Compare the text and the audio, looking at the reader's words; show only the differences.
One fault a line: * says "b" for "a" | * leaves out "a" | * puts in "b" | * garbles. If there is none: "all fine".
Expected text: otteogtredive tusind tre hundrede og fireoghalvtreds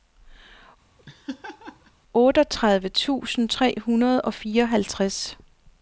all fine